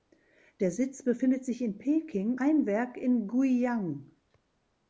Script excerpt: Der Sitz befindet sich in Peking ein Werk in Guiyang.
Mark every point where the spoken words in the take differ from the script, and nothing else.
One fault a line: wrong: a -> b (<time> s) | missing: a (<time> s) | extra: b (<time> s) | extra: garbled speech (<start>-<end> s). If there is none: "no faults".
no faults